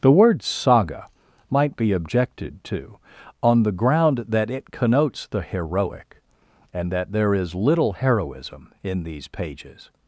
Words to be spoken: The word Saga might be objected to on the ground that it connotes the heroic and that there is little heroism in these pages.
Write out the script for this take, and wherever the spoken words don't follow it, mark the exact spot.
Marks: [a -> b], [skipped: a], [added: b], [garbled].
The word Saga might be objected to on the ground that it connotes the heroic and that there is little heroism in these pages.